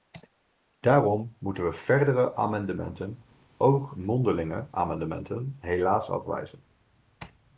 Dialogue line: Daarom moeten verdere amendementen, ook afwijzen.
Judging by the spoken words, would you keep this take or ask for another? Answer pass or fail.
fail